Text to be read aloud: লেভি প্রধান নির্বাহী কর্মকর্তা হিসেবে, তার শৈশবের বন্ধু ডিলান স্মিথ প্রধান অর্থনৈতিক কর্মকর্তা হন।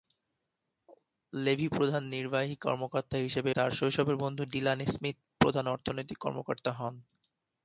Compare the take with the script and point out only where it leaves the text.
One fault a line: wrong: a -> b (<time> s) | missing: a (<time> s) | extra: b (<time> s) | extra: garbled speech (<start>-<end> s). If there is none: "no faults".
no faults